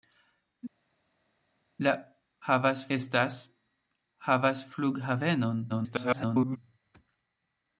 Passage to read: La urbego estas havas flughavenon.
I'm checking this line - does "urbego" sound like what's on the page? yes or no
no